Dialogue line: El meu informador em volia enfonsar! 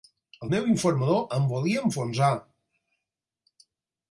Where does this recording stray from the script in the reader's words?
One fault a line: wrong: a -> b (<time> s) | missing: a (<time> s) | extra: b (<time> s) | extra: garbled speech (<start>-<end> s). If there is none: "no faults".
no faults